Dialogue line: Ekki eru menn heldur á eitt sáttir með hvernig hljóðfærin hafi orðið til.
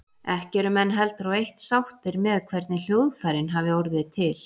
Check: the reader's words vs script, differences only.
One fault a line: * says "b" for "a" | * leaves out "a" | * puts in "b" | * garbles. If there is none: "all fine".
all fine